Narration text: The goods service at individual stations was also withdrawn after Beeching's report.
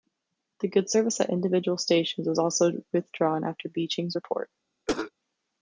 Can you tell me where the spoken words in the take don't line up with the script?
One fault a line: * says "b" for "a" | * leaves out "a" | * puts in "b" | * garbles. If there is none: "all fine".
all fine